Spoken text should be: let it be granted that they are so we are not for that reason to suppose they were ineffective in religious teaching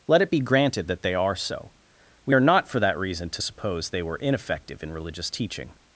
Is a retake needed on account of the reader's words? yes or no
no